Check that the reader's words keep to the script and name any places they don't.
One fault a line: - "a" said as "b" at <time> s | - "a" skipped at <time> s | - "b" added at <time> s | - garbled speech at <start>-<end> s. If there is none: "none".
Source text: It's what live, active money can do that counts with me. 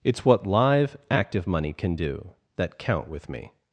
- "counts" said as "count" at 2.8 s